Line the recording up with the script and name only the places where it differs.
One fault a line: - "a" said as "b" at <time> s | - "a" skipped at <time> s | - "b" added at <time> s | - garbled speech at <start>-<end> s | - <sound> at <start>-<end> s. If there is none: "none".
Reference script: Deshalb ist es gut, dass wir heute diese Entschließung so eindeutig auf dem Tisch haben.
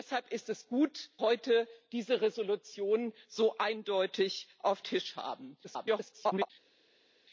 - "dass wir" skipped at 1.1 s
- "dem" skipped at 4.8 s
- garbled speech at 5.6-6.5 s